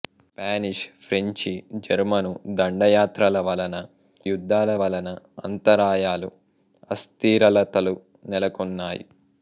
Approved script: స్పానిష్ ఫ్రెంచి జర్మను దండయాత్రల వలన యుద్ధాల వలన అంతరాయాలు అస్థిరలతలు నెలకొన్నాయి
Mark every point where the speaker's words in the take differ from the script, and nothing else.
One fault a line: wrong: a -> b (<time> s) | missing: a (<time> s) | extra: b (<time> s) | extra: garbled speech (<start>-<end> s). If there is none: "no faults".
no faults